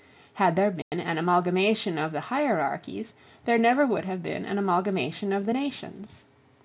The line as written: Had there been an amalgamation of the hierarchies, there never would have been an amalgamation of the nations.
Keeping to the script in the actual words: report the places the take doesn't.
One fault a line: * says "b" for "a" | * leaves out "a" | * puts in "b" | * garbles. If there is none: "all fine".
all fine